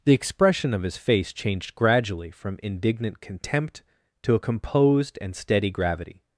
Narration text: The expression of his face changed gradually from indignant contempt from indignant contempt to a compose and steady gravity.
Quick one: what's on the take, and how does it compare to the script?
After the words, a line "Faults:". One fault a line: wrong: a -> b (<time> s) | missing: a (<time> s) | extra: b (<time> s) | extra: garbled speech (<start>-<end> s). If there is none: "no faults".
The expression of his face changed gradually from indignant contempt to a composed and steady gravity.
Faults:
missing: from indignant contempt (3.8 s)
wrong: compose -> composed (4.4 s)